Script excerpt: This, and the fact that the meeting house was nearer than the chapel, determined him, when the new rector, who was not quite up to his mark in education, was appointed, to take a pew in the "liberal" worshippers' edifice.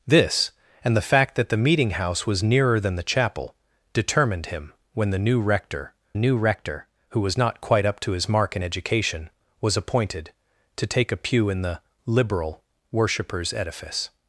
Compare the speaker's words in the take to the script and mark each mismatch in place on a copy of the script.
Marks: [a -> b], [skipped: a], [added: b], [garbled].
This, and the fact that the meeting house was nearer than the chapel, determined him, when the new rector, [added: new rector] who was not quite up to his mark in education, was appointed, to take a pew in the "liberal" worshippers' edifice.